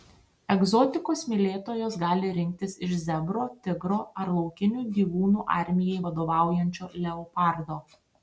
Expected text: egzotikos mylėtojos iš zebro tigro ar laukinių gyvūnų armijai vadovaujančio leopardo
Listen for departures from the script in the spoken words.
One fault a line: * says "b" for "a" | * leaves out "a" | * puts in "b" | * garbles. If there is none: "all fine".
* puts in "gali rinktis"